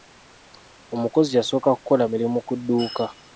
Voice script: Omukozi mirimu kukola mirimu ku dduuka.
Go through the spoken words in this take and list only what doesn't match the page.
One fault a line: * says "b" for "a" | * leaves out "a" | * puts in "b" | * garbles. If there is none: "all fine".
* says "yasooka" for "mirimu"